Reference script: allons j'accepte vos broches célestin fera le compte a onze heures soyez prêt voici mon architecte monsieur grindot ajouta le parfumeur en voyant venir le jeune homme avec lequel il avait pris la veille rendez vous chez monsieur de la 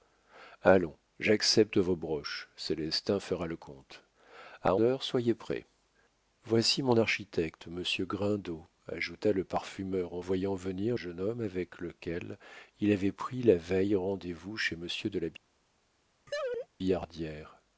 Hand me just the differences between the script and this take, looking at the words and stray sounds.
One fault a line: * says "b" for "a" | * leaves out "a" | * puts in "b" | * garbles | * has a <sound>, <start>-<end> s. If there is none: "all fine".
* leaves out "onze"
* leaves out "le"
* has a laugh, 16.3-16.7 s